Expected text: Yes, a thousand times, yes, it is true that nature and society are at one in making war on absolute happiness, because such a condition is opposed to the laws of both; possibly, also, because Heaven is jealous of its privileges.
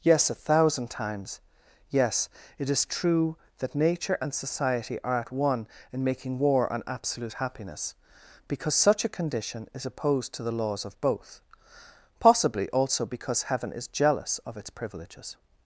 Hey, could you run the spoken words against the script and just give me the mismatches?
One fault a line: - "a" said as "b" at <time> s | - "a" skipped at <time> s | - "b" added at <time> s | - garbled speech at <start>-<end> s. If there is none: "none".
none